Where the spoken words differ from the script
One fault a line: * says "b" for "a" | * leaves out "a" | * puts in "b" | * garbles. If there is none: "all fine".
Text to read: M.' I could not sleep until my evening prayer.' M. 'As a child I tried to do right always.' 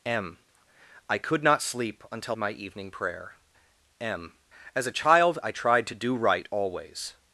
all fine